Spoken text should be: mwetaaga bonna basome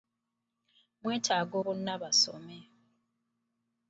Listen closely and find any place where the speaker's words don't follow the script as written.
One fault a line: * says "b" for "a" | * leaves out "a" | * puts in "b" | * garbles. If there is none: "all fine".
all fine